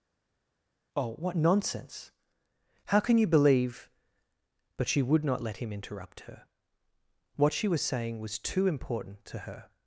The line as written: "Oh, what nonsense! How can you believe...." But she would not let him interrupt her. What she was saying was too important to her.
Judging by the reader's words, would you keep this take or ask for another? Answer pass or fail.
pass